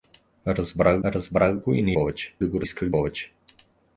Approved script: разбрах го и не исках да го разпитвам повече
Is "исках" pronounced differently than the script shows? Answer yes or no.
yes